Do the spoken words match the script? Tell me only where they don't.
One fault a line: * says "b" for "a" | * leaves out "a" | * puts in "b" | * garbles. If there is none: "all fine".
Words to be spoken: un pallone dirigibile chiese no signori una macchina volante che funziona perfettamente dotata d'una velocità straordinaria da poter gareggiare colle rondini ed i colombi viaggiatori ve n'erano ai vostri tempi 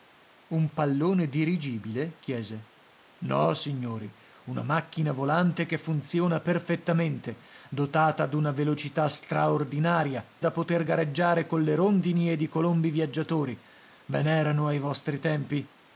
all fine